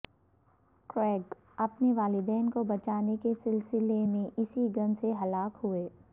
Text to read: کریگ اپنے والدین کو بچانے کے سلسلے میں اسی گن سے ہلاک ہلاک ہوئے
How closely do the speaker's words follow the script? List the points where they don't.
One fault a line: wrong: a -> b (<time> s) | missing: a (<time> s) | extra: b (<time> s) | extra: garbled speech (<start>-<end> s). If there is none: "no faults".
missing: ہلاک (5.6 s)